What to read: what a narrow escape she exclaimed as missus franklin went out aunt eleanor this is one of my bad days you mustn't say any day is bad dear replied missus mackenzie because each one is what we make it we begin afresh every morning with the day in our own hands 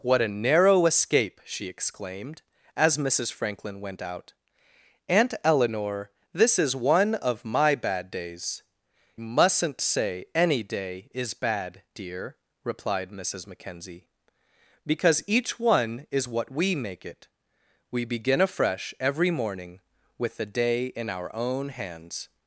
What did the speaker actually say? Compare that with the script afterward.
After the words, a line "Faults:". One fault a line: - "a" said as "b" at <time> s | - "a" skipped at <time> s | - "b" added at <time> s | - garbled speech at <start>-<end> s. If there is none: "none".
what a narrow escape she exclaimed as missus franklin went out aunt eleanor this is one of my bad days mustn't say any day is bad dear replied missus mackenzie because each one is what we make it we begin afresh every morning with the day in our own hands
Faults:
- "you" skipped at 8.6 s